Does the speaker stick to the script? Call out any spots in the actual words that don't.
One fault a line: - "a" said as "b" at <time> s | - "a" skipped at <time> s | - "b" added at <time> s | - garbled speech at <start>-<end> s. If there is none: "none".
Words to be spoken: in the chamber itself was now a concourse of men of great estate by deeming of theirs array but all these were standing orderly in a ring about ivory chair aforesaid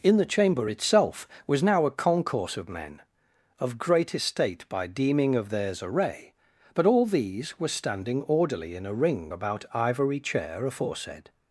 none